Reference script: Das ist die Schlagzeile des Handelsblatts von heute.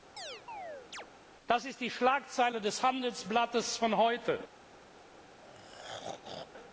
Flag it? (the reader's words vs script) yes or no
no